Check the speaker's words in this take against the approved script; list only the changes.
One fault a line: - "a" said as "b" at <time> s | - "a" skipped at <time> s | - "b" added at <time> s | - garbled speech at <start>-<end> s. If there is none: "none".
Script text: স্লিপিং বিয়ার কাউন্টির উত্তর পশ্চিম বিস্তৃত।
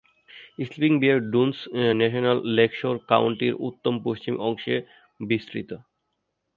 - "ডুনস ন্যাশনাল লেকশোর" added at 1.3 s
- "অংশে" added at 4.4 s